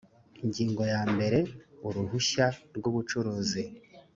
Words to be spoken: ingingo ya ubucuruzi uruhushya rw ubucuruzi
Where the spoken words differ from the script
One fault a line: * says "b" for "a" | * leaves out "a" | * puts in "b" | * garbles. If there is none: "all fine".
* says "mbere" for "ubucuruzi"